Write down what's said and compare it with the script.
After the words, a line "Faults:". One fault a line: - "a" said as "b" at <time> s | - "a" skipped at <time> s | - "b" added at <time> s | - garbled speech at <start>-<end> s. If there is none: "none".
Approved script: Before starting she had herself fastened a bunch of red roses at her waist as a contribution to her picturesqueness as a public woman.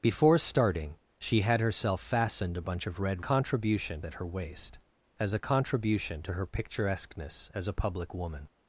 Before starting she had herself fastened a bunch of red contribution at her waist as a contribution to her picturesqueness as a public woman.
Faults:
- "roses" said as "contribution" at 3.2 s